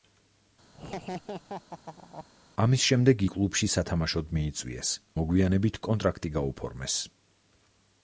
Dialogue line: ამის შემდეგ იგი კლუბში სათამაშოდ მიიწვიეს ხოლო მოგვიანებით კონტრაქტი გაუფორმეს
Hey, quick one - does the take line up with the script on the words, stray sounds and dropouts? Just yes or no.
no